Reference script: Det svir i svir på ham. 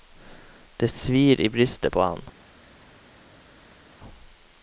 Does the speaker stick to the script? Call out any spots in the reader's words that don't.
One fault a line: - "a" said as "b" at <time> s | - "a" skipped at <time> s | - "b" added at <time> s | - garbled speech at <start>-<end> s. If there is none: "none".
- "svir" said as "brystet" at 1.5 s